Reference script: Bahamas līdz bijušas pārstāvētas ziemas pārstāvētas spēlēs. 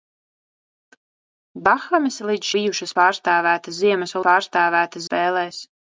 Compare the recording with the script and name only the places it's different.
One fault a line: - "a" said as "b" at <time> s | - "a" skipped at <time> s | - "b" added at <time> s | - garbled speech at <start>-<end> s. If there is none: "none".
none